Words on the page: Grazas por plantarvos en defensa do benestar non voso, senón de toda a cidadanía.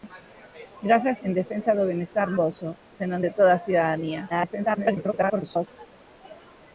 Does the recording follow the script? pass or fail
fail